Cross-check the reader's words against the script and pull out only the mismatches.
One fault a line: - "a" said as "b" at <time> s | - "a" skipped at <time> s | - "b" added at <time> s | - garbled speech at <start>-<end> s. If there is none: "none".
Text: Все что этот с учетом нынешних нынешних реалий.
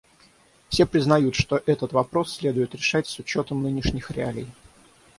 - "признают" added at 0.9 s
- "вопрос следует решать" added at 1.9 s
- "нынешних" skipped at 4.1 s